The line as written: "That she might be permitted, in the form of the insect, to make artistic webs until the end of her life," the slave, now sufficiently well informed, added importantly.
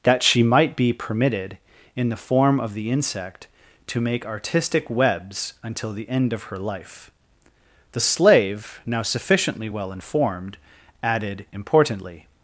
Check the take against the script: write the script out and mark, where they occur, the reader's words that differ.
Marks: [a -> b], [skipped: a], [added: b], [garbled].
"That she might be permitted, in the form of the insect, to make artistic webs until the end of her life," the slave, now sufficiently well informed, added importantly.